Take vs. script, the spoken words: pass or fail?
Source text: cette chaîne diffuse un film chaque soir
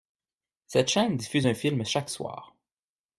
pass